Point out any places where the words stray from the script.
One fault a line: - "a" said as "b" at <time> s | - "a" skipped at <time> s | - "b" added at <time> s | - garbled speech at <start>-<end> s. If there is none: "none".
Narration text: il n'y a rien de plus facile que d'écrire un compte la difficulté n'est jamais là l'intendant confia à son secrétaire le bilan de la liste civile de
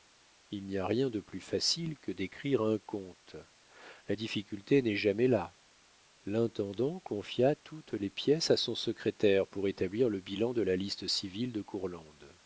- "toutes les pièces" added at 7.5 s
- "pour établir" added at 9.5 s